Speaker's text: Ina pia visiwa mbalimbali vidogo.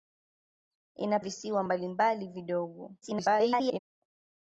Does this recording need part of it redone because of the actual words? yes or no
yes